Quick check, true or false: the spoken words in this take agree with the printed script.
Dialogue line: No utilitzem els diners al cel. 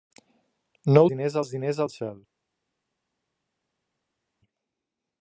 false